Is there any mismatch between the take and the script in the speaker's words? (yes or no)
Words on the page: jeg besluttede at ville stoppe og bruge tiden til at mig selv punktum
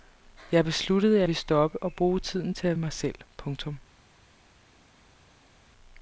no